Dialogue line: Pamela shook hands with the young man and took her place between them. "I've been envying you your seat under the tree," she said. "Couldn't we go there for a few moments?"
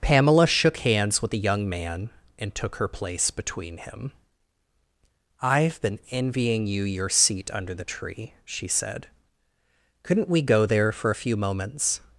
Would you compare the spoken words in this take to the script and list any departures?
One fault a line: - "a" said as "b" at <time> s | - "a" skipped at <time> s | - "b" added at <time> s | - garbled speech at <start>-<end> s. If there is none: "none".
- "them" said as "him" at 3.8 s